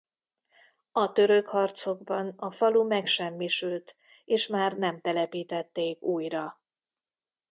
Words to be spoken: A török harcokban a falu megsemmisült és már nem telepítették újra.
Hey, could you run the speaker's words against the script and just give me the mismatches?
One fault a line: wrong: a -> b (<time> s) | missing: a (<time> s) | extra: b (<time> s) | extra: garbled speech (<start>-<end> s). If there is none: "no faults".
no faults